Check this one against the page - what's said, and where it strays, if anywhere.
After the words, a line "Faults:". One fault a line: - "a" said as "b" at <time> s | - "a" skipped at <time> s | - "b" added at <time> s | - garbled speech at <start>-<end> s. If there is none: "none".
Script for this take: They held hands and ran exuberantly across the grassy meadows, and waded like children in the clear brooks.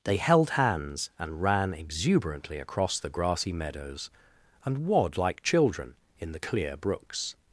They held hands and ran exuberantly across the grassy meadows, and wad like children in the clear brooks.
Faults:
- "waded" said as "wad" at 4.8 s